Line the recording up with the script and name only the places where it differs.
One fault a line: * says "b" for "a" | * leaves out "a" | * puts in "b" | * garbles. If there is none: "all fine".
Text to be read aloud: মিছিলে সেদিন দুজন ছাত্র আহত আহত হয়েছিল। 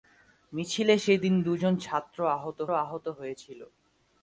all fine